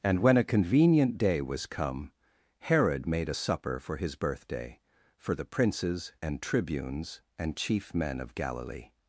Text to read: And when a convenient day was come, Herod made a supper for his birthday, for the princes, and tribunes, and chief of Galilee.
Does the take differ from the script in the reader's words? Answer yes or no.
yes